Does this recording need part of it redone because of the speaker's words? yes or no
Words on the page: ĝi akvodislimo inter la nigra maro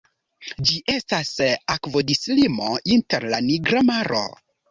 yes